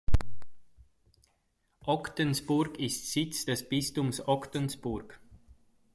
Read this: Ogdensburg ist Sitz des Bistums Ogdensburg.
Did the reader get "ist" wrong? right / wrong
right